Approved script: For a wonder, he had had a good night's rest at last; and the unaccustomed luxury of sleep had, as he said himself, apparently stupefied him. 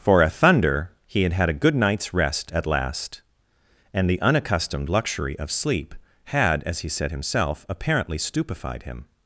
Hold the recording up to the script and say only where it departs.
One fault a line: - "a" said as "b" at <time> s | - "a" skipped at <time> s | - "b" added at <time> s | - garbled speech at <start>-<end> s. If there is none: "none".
- "wonder" said as "thunder" at 0.3 s